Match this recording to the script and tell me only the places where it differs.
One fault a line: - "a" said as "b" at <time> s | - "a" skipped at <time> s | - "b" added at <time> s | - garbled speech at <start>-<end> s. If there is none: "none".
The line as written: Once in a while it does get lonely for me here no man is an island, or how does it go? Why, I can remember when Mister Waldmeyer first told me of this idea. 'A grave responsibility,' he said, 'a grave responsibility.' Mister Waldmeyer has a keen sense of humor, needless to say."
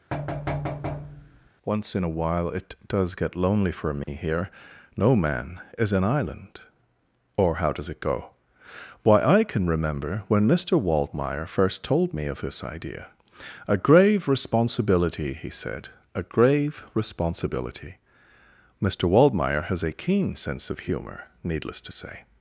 none